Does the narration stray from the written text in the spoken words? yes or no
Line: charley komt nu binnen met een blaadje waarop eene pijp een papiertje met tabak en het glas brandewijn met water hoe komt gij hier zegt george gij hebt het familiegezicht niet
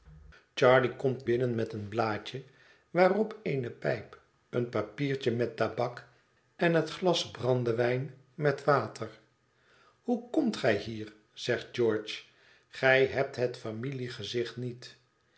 yes